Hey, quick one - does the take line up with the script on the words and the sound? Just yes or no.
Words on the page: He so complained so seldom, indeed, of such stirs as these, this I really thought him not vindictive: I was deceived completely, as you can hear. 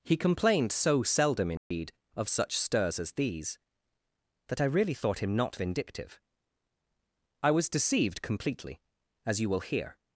no